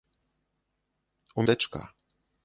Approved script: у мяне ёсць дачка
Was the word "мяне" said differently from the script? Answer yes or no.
yes